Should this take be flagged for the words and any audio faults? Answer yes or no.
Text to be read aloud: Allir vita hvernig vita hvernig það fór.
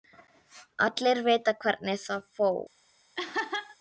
yes